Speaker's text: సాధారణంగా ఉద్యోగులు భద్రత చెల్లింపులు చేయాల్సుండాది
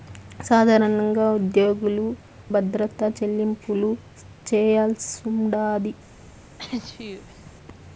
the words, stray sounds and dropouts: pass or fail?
fail